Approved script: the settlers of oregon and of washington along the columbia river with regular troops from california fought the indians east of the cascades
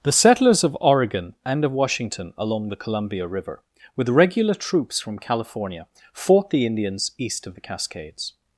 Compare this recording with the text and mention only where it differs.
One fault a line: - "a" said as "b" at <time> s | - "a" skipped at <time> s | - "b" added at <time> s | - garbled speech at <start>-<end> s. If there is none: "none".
none